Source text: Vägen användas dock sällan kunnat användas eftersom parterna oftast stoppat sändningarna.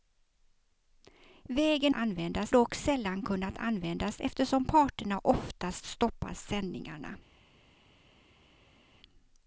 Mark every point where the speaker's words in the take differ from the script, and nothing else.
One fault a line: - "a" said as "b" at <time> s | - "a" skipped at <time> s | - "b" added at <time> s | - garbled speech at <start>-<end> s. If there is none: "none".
none